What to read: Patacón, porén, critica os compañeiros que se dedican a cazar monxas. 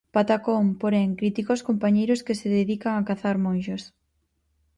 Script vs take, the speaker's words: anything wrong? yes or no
no